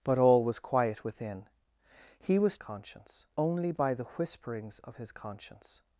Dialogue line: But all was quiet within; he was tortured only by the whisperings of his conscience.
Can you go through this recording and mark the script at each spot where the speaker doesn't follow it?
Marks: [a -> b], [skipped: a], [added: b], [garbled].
But all was quiet within; he was [tortured -> conscience] only by the whisperings of his conscience.